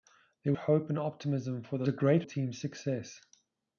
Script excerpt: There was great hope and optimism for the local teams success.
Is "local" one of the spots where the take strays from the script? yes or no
yes